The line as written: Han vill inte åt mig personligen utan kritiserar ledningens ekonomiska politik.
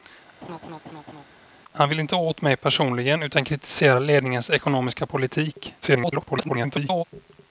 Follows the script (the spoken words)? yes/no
no